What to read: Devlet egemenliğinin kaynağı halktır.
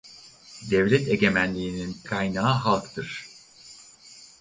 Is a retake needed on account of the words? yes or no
no